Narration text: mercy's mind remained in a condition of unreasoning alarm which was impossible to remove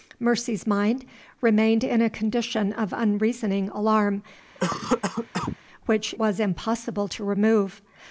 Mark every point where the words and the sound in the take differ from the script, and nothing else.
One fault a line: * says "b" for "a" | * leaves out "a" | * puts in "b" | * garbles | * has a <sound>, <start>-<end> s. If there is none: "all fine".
* has a cough, 4.5-5.6 s